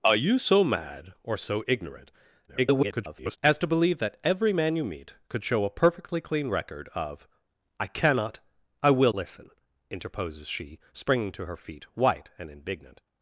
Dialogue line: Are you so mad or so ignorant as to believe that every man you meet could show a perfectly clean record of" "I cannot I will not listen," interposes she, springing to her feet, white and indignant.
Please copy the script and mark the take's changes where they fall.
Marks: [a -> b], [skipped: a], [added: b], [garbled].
Are you so mad or so ignorant [garbled] as to believe that every man you meet could show a perfectly clean record of" "I cannot I will [skipped: not] listen," interposes she, springing to her feet, white and indignant.